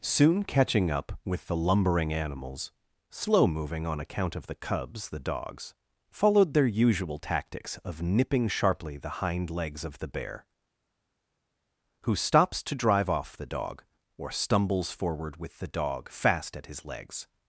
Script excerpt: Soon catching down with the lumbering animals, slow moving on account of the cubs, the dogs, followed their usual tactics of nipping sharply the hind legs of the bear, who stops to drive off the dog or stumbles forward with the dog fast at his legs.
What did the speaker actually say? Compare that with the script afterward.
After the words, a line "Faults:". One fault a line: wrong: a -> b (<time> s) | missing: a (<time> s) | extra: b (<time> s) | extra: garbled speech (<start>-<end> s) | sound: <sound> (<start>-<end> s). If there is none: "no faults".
Soon catching up with the lumbering animals, slow moving on account of the cubs, the dogs, followed their usual tactics of nipping sharply the hind legs of the bear, who stops to drive off the dog or stumbles forward with the dog fast at his legs.
Faults:
wrong: down -> up (0.9 s)